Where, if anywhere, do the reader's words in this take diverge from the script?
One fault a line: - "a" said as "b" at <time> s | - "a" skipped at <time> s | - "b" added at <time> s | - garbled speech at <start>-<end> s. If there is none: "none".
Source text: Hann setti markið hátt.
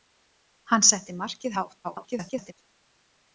- garbled speech at 1.8-2.5 s